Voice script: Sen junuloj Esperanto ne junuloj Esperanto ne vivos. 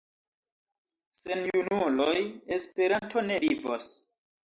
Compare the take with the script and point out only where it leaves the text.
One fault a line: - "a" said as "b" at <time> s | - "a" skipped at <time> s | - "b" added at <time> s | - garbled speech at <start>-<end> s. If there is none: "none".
- "junuloj Esperanto ne" skipped at 3.4 s